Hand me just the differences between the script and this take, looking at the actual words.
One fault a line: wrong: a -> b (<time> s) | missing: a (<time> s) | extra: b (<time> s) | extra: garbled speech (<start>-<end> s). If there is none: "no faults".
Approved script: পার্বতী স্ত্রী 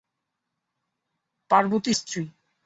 no faults